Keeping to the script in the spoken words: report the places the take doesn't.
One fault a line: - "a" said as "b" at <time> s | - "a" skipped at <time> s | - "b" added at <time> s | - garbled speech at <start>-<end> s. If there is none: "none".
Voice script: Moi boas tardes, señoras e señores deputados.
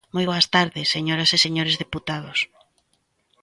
none